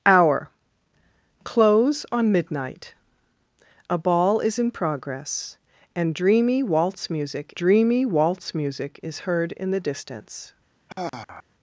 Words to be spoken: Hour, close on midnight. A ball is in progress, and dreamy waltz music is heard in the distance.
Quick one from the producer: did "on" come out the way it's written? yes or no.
yes